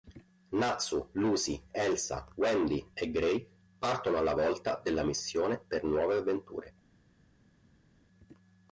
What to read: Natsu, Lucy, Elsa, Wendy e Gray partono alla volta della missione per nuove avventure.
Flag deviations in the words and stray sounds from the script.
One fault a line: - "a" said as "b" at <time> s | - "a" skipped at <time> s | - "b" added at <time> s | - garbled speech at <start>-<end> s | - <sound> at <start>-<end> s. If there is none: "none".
none